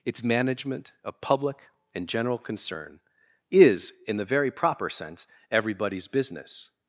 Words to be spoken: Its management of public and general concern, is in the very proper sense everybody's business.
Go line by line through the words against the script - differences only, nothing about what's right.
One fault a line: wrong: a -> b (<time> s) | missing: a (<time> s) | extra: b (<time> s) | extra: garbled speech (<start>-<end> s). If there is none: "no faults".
no faults